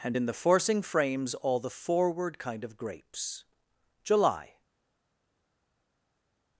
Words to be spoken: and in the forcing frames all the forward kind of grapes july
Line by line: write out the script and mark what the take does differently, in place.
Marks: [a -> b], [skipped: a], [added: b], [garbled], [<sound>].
and in the forcing frames all the forward kind of grapes july